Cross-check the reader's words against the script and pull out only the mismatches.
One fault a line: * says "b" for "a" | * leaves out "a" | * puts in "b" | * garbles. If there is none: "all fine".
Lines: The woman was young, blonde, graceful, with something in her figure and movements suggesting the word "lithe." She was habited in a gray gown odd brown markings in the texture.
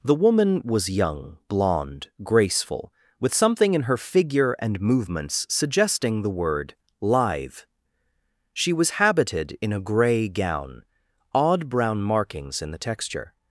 all fine